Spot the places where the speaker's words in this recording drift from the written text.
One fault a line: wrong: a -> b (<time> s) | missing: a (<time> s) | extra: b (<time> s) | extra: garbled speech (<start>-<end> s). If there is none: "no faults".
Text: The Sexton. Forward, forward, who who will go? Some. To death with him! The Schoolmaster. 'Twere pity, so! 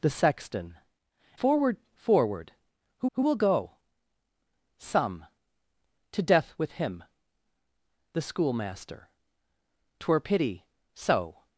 no faults